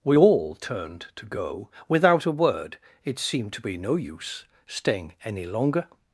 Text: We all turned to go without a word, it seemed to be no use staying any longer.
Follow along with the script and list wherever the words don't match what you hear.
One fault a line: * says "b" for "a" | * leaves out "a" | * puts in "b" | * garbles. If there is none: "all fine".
all fine